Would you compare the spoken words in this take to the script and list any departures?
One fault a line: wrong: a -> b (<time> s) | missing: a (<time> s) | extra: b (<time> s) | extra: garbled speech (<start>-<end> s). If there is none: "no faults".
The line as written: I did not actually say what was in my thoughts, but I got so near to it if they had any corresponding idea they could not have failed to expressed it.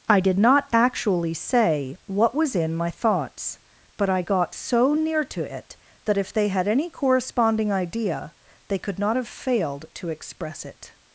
extra: that (6.0 s)
wrong: expressed -> express (10.1 s)